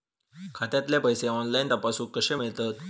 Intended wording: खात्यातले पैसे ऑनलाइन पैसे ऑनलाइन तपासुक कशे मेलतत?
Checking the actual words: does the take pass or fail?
fail